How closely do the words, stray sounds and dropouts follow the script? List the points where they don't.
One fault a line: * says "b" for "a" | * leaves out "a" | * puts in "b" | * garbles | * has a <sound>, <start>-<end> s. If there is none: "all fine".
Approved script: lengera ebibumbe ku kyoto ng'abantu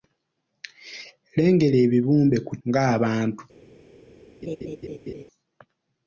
* leaves out "kyoto"
* has a laugh, 4.4-5.2 s